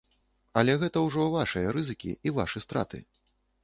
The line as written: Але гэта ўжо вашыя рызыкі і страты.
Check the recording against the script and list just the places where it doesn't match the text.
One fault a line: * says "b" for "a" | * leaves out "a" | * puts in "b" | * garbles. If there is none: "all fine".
* puts in "вашы"